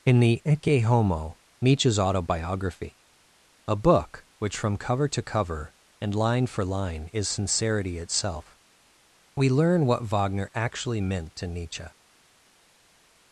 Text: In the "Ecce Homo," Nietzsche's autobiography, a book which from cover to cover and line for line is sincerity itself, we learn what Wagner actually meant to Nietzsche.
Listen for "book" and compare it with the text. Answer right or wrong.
right